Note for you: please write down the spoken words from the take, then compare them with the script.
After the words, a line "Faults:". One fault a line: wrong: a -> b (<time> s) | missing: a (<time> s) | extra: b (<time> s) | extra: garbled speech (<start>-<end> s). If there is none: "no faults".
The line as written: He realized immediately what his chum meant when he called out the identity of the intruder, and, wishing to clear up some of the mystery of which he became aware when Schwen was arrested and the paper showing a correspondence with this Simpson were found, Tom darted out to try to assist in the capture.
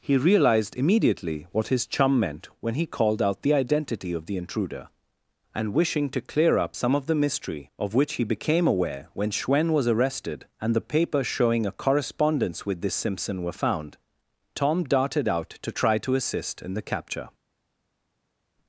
He realized immediately what his chum meant when he called out the identity of the intruder, and, wishing to clear up some of the mystery of which he became aware when Schwen was arrested and the paper showing a correspondence with this Simpson were found, Tom darted out to try to assist in the capture.
Faults:
no faults